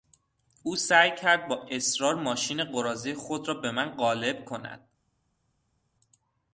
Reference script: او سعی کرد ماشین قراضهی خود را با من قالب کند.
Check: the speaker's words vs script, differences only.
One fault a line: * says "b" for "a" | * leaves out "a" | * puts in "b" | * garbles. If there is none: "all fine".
* puts in "با اصرار"
* says "به" for "با"